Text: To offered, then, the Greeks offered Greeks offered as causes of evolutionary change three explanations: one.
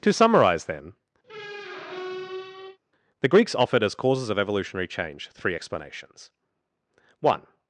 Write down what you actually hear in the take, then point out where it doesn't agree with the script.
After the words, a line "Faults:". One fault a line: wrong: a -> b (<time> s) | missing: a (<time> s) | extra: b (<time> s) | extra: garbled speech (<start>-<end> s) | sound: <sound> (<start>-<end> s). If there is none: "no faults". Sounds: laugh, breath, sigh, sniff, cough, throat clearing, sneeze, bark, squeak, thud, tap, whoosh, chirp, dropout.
To summarize, then, the Greeks offered as causes of evolutionary change three explanations: one.
Faults:
wrong: offered -> summarize (0.1 s)
sound: squeak (1.2-2.8 s)
missing: Greeks offered (3.8 s)